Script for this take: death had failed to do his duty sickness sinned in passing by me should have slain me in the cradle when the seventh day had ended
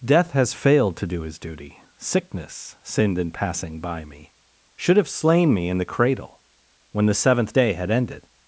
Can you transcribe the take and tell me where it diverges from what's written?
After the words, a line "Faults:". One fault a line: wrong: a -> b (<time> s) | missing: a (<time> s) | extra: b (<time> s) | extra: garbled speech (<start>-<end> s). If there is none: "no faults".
death has failed to do his duty sickness sinned in passing by me should have slain me in the cradle when the seventh day had ended
Faults:
wrong: had -> has (0.3 s)